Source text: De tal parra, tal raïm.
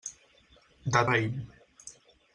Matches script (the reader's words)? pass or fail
fail